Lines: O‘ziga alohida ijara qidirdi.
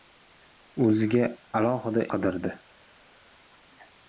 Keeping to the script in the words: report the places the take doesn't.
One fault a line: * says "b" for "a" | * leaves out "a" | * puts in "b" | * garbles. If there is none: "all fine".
* leaves out "ijara"